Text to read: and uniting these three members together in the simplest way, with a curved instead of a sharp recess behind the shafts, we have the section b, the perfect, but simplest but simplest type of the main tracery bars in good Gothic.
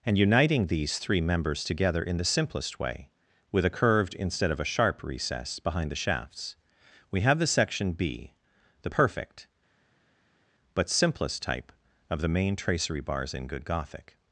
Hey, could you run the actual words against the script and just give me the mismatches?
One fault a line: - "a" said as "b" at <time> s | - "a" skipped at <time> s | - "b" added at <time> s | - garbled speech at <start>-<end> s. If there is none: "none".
- "but simplest" skipped at 11.4 s